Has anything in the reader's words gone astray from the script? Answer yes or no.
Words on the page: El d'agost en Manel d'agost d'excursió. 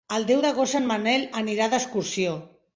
yes